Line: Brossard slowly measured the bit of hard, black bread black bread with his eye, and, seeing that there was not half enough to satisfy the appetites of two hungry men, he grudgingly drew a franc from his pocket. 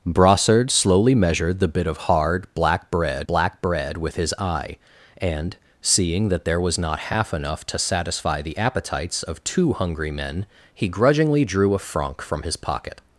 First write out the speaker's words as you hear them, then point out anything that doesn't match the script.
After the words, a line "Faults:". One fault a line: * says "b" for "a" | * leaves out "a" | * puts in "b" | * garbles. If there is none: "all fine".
Brossard slowly measured the bit of hard, black bread black bread with his eye, and, seeing that there was not half enough to satisfy the appetites of two hungry men, he grudgingly drew a franc from his pocket.
Faults:
all fine